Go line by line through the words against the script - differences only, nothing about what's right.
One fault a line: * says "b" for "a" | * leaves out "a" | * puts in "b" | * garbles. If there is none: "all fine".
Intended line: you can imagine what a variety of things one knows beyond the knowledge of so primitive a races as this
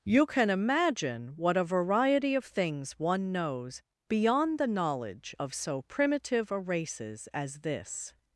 all fine